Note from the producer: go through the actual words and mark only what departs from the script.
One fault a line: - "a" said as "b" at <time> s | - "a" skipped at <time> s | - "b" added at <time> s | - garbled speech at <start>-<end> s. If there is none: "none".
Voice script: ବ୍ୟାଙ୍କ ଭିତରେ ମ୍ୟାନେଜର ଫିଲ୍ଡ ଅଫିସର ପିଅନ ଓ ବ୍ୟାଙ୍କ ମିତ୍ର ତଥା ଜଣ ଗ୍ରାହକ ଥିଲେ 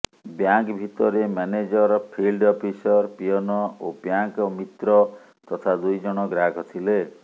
- "ଦୁଇ" added at 5.8 s